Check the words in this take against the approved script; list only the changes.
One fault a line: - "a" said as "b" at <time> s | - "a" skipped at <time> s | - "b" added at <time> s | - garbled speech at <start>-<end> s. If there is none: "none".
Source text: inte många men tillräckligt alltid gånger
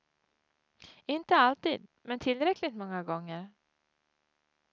- "många" said as "alltid" at 1.4 s
- "alltid" said as "många" at 2.7 s